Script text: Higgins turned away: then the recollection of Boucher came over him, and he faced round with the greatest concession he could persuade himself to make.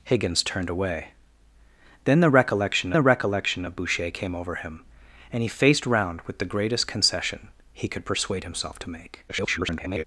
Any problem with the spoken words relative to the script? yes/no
yes